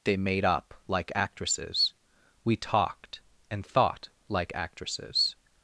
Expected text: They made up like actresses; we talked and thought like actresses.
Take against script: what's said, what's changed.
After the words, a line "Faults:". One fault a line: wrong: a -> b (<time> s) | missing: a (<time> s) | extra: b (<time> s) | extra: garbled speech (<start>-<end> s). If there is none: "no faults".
They made up like actresses; we talked and thought like actresses.
Faults:
no faults